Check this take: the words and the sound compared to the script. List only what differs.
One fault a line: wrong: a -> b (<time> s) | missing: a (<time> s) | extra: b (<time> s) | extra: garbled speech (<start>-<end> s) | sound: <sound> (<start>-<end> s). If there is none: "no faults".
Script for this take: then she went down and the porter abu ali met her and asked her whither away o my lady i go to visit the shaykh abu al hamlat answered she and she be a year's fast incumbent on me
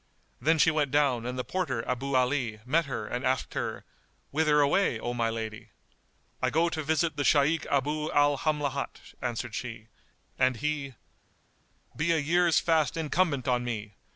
wrong: she -> he (10.6 s)